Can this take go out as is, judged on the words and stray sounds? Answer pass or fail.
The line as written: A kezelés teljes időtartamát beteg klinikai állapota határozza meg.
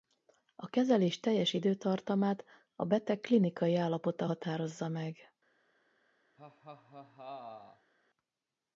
fail